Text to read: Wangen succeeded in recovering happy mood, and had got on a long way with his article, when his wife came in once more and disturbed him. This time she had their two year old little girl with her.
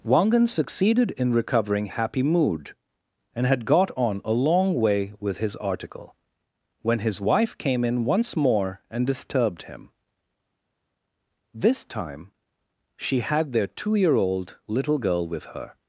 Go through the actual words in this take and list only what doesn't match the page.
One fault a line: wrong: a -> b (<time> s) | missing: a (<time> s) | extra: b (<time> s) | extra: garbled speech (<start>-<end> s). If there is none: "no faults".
no faults